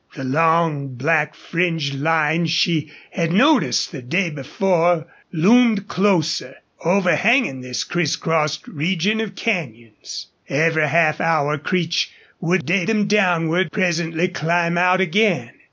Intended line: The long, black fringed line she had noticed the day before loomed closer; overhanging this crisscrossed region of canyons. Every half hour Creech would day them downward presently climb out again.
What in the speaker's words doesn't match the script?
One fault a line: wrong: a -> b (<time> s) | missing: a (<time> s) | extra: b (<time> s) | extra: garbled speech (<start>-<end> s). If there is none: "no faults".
no faults